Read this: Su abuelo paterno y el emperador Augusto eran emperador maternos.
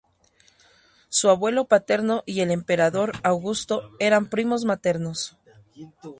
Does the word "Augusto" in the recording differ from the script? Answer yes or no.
no